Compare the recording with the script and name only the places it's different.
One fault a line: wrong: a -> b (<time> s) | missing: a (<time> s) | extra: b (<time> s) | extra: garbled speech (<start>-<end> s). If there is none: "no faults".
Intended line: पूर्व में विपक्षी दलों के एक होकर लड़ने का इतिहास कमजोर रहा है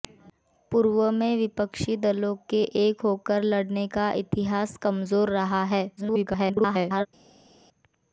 extra: garbled speech (6.0-7.1 s)